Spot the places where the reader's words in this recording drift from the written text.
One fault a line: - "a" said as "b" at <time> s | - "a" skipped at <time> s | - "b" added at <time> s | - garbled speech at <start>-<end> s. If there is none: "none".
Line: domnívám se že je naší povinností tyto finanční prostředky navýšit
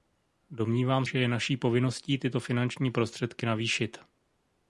- "se" skipped at 1.1 s